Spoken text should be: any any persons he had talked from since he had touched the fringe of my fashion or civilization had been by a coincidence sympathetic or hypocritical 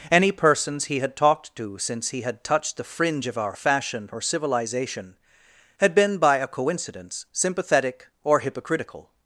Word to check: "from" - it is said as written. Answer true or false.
false